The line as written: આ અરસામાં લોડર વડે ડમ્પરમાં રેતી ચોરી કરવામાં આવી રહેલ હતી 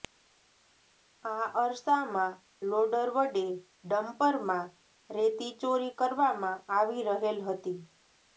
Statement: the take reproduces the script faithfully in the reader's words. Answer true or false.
true